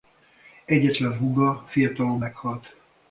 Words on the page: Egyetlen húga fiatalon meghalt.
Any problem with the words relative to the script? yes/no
no